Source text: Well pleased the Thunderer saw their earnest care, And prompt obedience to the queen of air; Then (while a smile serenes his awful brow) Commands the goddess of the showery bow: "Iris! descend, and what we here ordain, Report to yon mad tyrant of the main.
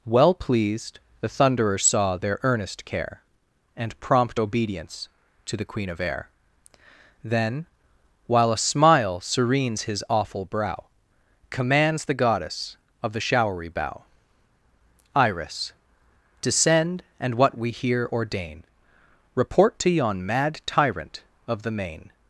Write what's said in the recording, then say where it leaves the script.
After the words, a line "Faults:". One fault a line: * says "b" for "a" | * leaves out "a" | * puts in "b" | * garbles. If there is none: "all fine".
Well pleased the Thunderer saw their earnest care, And prompt obedience to the queen of air; Then (while a smile serenes his awful brow) Commands the goddess of the showery bow: "Iris! descend, and what we here ordain, Report to yon mad tyrant of the main.
Faults:
all fine